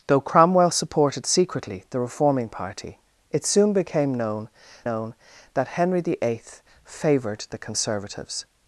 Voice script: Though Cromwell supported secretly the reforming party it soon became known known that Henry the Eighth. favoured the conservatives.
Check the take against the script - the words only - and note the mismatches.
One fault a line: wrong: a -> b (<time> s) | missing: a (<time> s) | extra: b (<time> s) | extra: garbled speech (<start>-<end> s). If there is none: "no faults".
no faults